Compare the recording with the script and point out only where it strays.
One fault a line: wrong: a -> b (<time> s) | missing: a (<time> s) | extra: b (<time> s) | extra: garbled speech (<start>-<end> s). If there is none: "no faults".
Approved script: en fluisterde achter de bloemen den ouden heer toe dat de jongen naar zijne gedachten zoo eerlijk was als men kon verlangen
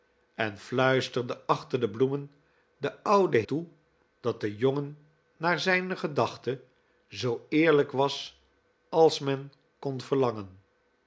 missing: heer (3.4 s)